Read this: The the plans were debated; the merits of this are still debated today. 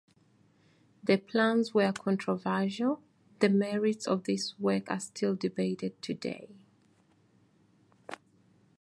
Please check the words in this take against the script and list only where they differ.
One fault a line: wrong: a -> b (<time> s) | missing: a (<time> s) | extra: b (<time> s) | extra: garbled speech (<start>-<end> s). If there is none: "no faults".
missing: the (1.2 s)
wrong: debated -> controversial (1.9 s)
extra: work (4.6 s)